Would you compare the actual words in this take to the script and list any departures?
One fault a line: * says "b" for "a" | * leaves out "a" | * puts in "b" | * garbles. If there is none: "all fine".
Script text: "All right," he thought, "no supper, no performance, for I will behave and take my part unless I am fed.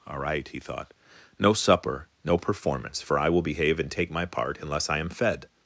all fine